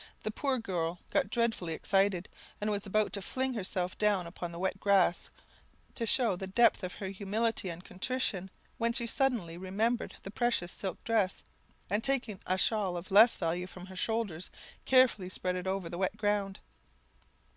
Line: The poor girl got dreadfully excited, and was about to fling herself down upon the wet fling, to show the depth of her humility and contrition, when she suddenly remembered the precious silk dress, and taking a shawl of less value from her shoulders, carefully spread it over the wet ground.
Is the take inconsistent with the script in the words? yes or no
yes